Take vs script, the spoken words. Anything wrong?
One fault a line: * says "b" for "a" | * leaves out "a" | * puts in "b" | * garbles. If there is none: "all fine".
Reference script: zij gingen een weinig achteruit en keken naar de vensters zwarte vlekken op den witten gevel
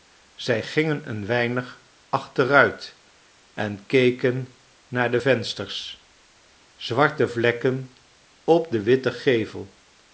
all fine